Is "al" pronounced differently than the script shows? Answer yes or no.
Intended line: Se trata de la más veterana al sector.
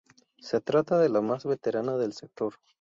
yes